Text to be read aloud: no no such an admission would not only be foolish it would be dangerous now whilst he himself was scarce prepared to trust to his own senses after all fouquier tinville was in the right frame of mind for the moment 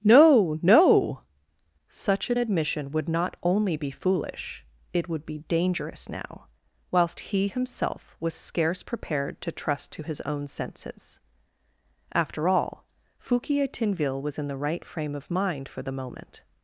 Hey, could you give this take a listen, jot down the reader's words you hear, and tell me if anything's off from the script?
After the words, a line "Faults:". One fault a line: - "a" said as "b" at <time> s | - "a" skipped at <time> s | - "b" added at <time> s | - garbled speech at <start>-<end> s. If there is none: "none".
no no such an admission would not only be foolish it would be dangerous now whilst he himself was scarce prepared to trust to his own senses after all fouquier tinville was in the right frame of mind for the moment
Faults:
none